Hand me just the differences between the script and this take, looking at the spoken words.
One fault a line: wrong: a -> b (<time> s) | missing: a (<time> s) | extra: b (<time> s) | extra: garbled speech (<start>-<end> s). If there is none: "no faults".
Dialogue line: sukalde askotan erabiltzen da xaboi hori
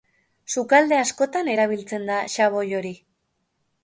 no faults